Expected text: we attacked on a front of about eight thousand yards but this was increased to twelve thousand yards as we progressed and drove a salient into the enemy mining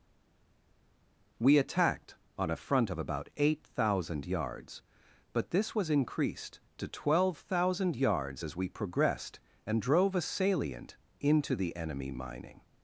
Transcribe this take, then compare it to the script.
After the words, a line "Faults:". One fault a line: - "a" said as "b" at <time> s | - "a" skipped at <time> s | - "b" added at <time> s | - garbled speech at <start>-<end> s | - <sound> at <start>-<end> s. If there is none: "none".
we attacked on a front of about eight thousand yards but this was increased to twelve thousand yards as we progressed and drove a salient into the enemy mining
Faults:
none